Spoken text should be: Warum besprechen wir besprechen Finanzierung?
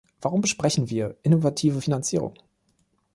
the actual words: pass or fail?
fail